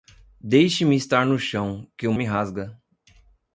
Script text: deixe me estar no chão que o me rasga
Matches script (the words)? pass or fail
pass